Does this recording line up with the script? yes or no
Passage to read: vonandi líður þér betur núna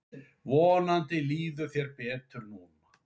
yes